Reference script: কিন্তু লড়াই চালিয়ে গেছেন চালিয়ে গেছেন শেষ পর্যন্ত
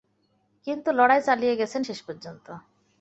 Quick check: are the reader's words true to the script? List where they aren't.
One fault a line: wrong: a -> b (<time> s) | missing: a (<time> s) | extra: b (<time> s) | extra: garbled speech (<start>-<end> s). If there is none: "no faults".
missing: চালিয়ে গেছেন (1.8 s)